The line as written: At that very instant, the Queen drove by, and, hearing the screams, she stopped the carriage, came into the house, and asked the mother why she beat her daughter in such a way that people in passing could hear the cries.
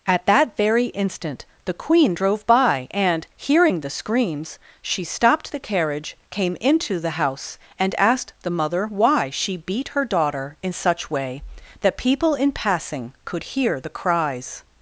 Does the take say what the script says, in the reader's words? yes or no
no